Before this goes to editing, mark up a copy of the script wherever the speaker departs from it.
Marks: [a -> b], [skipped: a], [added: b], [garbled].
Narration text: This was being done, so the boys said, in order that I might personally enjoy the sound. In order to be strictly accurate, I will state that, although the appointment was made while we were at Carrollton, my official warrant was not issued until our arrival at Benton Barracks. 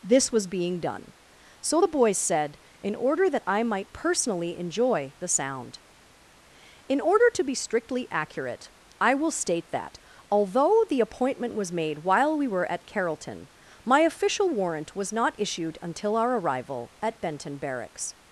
This was being done, so the boys said, in order that I might personally enjoy the sound. In order to be strictly accurate, I will state that, although the appointment was made while we were at Carrollton, my official warrant was not issued until our arrival at Benton Barracks.